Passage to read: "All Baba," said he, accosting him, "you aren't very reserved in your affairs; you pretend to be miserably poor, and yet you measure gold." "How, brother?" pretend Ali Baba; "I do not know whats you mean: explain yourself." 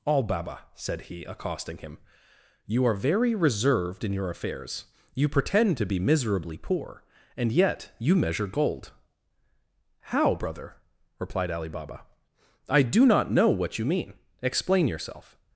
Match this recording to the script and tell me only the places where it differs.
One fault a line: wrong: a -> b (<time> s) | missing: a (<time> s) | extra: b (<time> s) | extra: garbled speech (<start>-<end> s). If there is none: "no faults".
wrong: aren't -> are (2.9 s)
wrong: pretend -> replied (11.2 s)
wrong: whats -> what (13.5 s)